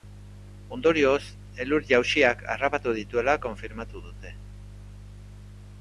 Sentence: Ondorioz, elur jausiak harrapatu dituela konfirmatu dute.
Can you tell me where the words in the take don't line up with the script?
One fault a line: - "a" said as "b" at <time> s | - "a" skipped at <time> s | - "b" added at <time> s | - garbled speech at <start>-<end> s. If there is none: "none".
none